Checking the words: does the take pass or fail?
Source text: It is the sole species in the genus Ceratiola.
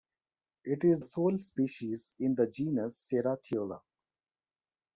fail